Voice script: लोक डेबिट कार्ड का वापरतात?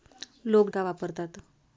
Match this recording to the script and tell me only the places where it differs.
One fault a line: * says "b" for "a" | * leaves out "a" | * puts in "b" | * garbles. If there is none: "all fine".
* leaves out "डेबिट कार्ड"